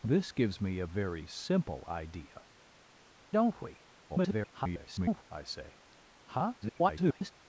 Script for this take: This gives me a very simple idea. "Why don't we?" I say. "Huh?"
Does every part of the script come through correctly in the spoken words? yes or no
no